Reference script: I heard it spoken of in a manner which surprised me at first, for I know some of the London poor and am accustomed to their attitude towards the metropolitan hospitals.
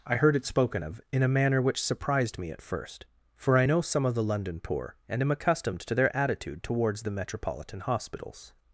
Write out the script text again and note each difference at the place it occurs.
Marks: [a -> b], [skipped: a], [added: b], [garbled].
I heard it spoken of in a manner which surprised me at first, for I know some of the London poor and am accustomed to their attitude towards the metropolitan hospitals.